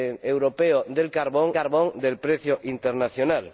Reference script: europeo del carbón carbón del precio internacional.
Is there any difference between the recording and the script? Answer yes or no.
no